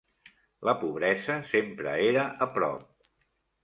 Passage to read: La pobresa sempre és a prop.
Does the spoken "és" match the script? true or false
false